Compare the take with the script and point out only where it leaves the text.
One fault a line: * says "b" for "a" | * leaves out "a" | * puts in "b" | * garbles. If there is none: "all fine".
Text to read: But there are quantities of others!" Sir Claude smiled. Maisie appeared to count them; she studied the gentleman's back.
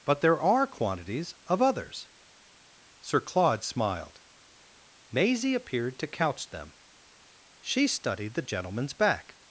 * says "couch" for "count"